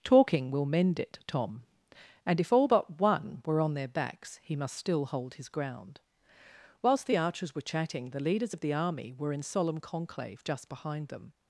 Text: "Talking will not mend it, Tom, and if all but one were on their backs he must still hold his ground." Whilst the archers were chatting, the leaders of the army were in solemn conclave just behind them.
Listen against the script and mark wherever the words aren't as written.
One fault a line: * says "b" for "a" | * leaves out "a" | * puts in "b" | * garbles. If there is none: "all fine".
* leaves out "not"